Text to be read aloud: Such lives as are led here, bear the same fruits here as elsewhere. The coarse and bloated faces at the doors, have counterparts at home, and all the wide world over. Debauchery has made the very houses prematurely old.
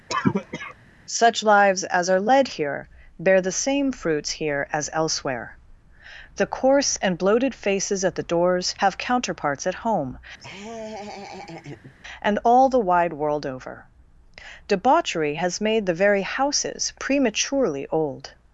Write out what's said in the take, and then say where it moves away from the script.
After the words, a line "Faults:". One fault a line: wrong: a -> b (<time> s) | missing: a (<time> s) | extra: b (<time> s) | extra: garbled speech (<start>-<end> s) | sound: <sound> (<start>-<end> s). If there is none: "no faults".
Such lives as are led here, bear the same fruits here as elsewhere. The coarse and bloated faces at the doors, have counterparts at home, and all the wide world over. Debauchery has made the very houses prematurely old.
Faults:
sound: cough (0.1-0.7 s)
sound: laugh (10.4-11.9 s)